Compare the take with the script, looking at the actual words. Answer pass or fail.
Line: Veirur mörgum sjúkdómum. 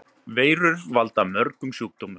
fail